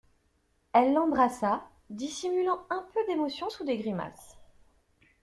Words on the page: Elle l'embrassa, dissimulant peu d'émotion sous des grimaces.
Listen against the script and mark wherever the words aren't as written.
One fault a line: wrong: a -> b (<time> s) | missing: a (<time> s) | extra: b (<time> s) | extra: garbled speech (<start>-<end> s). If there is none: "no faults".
extra: un (2.7 s)